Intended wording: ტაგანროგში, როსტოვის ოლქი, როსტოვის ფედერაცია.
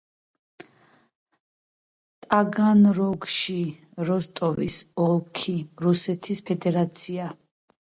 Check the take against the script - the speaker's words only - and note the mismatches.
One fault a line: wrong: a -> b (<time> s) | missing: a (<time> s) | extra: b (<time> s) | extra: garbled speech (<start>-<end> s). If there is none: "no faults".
wrong: როსტოვის -> რუსეთის (5.9 s)